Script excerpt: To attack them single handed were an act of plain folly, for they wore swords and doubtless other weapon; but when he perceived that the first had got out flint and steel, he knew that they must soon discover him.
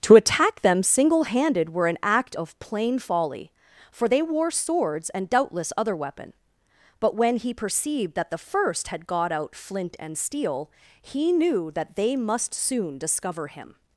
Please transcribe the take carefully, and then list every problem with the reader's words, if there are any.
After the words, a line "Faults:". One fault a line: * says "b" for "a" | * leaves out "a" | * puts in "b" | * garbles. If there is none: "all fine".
To attack them single handed were an act of plain folly, for they wore swords and doubtless other weapon; but when he perceived that the first had got out flint and steel, he knew that they must soon discover him.
Faults:
all fine